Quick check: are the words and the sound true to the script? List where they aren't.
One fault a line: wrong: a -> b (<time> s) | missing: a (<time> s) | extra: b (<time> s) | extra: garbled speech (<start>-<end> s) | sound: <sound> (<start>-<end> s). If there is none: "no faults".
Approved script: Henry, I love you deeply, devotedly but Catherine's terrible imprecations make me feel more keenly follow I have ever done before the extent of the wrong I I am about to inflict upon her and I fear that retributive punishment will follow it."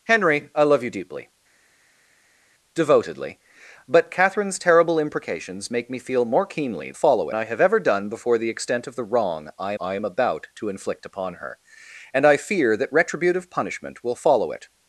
no faults